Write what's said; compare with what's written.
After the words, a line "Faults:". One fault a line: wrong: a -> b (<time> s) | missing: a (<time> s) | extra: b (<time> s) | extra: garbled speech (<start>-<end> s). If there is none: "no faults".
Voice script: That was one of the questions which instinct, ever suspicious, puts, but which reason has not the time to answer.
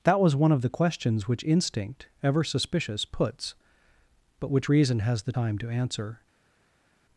That was one of the questions which instinct, ever suspicious, puts, but which reason has the time to answer.
Faults:
missing: not (5.2 s)